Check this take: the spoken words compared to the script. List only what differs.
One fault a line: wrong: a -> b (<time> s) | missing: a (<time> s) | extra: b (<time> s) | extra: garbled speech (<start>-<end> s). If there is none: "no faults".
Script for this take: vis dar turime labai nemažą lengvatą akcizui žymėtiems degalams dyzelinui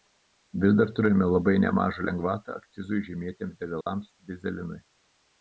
no faults